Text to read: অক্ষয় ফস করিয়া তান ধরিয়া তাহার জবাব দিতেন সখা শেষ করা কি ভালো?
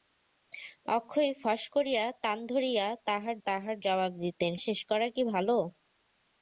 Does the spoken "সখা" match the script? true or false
false